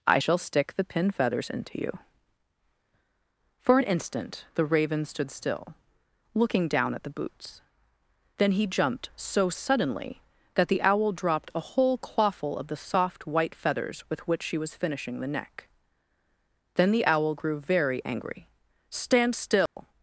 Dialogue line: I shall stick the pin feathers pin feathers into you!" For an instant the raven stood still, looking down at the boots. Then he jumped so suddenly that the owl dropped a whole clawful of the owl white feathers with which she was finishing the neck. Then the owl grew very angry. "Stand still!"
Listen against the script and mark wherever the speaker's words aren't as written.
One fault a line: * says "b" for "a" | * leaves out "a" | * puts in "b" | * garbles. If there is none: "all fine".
* leaves out "pin feathers"
* says "soft" for "owl"